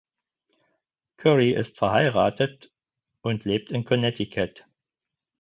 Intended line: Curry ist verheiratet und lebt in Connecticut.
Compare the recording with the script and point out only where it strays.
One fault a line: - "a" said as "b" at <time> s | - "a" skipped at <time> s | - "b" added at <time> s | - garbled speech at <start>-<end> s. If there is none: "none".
none